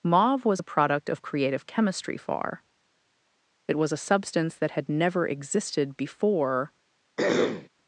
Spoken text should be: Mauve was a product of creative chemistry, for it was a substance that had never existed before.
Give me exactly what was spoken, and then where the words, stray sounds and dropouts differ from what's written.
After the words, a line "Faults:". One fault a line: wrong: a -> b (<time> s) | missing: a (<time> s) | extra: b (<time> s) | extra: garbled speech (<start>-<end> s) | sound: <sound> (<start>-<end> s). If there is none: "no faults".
Mauve was a product of creative chemistry, far it was a substance that had never existed before.
Faults:
wrong: for -> far (2.2 s)
sound: throat clearing (7.2-7.7 s)